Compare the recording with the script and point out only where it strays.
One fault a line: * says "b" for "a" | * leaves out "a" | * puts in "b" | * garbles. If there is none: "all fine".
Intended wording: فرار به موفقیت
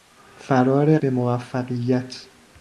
all fine